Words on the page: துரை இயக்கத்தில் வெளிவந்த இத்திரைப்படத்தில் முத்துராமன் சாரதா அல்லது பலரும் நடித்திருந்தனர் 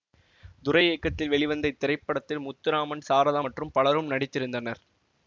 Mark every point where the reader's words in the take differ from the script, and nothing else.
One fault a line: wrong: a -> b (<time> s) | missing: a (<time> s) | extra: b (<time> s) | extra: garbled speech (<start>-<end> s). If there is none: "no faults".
wrong: அல்லது -> மற்றும் (3.4 s)